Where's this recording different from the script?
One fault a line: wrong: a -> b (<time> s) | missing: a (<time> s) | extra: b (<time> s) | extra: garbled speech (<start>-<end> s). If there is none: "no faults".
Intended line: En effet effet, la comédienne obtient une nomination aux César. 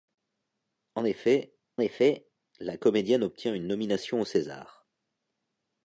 no faults